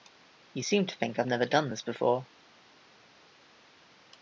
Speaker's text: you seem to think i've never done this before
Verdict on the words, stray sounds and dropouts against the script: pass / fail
pass